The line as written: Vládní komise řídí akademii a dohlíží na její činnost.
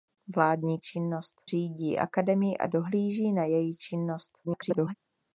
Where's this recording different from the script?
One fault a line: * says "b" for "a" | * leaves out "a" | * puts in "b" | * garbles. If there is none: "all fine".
* says "činnost" for "komise"
* garbles